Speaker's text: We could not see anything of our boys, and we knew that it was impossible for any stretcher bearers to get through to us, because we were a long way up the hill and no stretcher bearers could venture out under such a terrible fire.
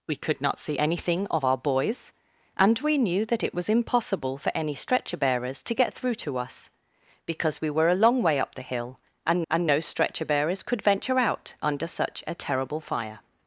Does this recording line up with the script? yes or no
no